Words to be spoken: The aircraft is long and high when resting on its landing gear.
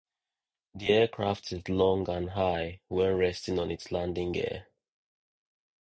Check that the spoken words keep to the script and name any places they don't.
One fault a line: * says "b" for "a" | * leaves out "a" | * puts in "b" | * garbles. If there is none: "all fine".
all fine